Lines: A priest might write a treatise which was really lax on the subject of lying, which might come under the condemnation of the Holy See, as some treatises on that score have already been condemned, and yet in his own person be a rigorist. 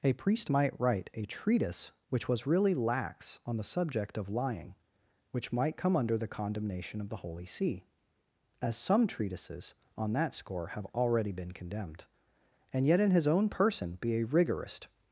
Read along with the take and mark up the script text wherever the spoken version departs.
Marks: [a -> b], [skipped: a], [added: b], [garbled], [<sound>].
A priest might write a treatise which was really lax on the subject of lying, which might come under the condemnation of the Holy See, as some treatises on that score have already been condemned, and yet in his own person be a rigorist.